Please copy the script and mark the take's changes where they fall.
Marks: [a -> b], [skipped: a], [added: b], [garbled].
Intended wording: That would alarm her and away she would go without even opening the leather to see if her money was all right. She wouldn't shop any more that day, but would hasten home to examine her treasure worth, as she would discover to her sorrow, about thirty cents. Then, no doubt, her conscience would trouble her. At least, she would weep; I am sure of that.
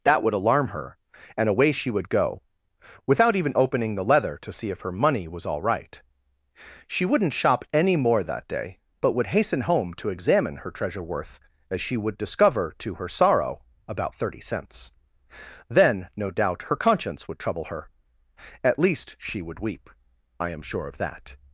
That would alarm her and away she would go without even opening the leather to see if her money was all right. She wouldn't shop any more that day, but would hasten home to examine her treasure worth, as she would discover to her sorrow, about thirty cents. Then, no doubt, her conscience would trouble her. At least, she would weep; I am sure of that.